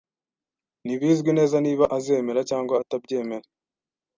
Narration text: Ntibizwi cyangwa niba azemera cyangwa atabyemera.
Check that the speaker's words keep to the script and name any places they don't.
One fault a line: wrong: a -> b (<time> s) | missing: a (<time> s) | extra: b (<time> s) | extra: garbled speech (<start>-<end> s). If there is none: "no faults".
wrong: cyangwa -> neza (1.4 s)